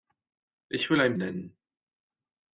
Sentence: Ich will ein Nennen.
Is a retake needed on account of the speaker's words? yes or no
no